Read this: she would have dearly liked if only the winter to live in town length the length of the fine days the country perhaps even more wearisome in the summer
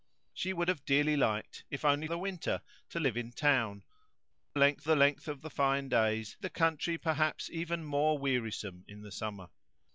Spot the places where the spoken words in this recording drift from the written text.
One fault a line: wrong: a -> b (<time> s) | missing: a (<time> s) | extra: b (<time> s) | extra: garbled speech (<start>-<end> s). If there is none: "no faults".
no faults